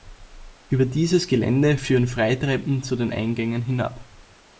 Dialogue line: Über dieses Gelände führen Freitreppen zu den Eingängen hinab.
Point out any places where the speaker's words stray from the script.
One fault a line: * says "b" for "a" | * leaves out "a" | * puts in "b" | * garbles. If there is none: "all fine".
all fine